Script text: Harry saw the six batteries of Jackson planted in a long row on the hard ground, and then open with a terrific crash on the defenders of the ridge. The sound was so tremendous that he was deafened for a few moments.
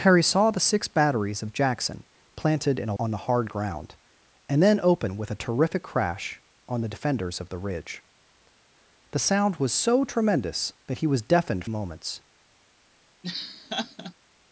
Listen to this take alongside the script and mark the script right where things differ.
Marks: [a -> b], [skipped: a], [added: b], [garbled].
Harry saw the six batteries of Jackson planted in a [skipped: long row] on the hard ground, and then open with a terrific crash on the defenders of the ridge. The sound was so tremendous that he was deafened [skipped: for a few] moments.